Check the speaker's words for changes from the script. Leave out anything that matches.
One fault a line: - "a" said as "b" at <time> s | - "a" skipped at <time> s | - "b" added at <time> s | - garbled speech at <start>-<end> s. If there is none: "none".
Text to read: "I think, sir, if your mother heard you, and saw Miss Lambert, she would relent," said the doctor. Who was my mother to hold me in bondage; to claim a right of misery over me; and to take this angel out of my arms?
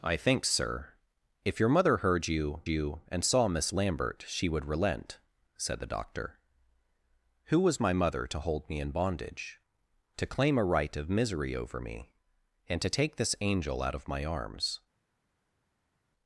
- "you" added at 2.7 s